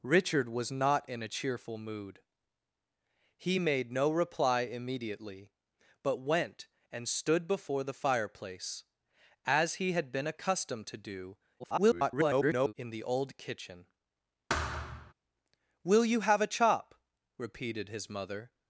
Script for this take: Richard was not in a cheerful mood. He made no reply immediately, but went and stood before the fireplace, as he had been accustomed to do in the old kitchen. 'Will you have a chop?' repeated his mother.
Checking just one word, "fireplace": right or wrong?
right